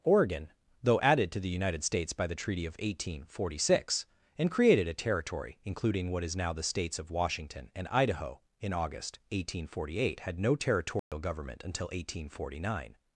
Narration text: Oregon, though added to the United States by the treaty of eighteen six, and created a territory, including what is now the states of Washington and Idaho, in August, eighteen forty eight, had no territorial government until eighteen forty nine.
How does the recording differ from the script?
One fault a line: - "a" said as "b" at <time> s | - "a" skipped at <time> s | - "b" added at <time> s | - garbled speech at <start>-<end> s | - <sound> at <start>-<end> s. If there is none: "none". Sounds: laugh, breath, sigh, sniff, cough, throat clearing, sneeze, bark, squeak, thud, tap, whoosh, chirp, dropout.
- "forty" added at 3.2 s
- dropout at 11.0-11.1 s